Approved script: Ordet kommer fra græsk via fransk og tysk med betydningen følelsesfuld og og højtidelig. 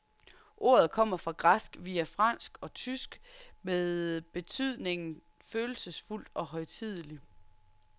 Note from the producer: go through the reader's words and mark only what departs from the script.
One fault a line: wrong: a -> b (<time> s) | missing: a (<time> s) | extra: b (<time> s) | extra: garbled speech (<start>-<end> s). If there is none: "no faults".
missing: og (6.5 s)